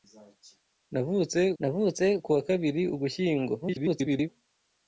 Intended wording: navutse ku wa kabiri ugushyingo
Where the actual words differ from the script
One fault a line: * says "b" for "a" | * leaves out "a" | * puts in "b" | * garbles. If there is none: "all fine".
* puts in "navutse"
* garbles